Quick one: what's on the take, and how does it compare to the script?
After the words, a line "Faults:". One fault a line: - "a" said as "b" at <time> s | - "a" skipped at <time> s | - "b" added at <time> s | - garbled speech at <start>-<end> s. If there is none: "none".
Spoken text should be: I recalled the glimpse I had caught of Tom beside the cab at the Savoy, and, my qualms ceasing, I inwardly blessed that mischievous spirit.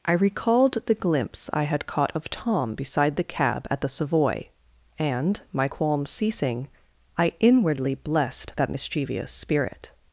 I recalled the glimpse I had caught of Tom beside the cab at the Savoy, and, my qualms ceasing, I inwardly blessed that mischievous spirit.
Faults:
none